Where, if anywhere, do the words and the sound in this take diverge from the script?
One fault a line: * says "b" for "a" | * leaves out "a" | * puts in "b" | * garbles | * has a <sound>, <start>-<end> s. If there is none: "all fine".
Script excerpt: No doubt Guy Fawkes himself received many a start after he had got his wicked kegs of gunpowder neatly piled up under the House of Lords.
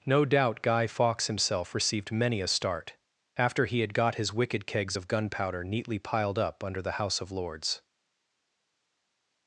all fine